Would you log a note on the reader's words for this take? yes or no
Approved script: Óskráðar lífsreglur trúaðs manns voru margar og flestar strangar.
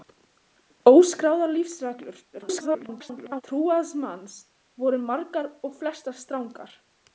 yes